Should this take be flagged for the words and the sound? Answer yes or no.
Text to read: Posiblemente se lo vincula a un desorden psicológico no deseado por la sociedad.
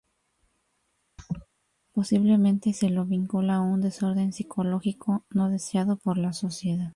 yes